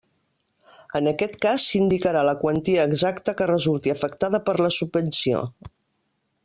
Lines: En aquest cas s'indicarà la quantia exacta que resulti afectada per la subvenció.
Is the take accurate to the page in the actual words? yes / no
yes